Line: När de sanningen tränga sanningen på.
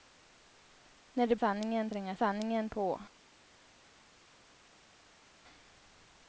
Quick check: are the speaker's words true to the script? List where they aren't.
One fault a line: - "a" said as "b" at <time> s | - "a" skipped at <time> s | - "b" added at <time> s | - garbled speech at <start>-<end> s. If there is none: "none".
none